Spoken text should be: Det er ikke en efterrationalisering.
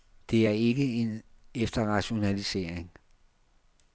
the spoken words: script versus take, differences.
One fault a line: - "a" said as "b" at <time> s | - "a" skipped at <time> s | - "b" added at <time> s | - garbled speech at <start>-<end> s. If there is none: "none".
none